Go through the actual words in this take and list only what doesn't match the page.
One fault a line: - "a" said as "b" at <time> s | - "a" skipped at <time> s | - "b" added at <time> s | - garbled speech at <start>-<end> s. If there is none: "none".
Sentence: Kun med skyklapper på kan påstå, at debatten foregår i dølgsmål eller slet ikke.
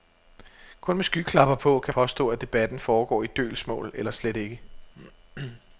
none